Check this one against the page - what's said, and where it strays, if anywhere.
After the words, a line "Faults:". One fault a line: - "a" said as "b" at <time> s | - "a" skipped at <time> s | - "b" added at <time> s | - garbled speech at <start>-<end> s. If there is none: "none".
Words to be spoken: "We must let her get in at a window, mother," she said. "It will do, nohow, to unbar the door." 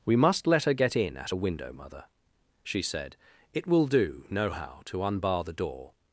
"We must let her get in at a window, mother," she said. "It will do, nohow, to unbar the door."
Faults:
none